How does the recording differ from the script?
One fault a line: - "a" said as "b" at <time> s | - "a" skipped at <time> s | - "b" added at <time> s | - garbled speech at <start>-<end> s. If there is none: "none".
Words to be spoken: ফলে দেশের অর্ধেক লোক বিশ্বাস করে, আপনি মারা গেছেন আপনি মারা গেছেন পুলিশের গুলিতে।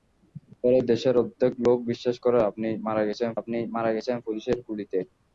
none